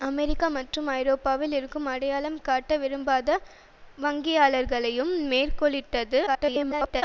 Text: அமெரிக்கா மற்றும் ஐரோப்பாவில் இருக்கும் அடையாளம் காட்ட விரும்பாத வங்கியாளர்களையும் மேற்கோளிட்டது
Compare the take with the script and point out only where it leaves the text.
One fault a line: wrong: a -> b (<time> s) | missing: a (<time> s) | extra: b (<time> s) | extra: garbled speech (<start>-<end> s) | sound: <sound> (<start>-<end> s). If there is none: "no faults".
extra: garbled speech (6.3-7.0 s)